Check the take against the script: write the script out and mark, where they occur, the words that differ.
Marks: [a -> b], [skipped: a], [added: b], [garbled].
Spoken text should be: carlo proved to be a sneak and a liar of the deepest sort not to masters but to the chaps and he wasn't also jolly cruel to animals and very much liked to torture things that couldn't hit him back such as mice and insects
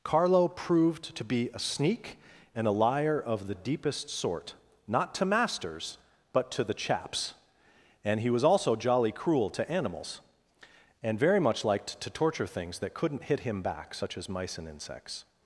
carlo proved to be a sneak and a liar of the deepest sort not to masters but to the chaps and he [wasn't -> was] also jolly cruel to animals and very much liked to torture things that couldn't hit him back such as mice and insects